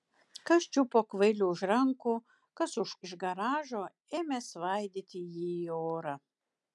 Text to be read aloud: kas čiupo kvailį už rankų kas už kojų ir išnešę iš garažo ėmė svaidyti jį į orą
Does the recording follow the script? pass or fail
fail